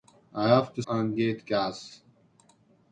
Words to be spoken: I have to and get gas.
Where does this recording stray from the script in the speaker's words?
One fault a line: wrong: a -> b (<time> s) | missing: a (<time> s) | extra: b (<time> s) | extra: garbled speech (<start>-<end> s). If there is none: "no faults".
no faults